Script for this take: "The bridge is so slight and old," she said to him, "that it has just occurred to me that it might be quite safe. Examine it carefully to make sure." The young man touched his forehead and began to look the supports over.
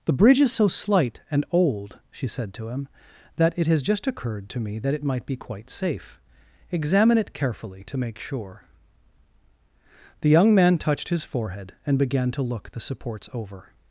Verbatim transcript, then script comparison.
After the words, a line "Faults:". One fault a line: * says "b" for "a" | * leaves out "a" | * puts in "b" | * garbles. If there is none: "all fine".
"The bridge is so slight and old," she said to him, "that it has just occurred to me that it might be quite safe. Examine it carefully to make sure." The young man touched his forehead and began to look the supports over.
Faults:
all fine